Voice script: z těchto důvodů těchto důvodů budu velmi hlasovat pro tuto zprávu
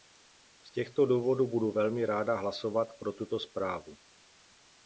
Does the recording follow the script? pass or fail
fail